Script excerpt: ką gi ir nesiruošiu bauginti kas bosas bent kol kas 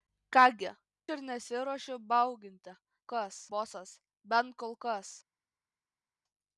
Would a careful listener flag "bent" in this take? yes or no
no